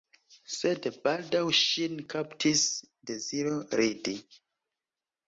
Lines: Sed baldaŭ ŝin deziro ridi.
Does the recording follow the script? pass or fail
fail